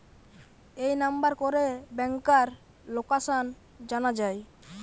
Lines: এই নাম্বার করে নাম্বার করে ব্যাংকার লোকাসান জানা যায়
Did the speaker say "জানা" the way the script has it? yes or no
yes